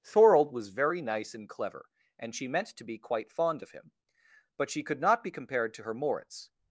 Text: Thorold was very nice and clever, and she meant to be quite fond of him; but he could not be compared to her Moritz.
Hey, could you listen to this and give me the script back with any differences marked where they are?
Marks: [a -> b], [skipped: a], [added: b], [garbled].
Thorold was very nice and clever, and she meant to be quite fond of him; but [he -> she] could not be compared to her Moritz.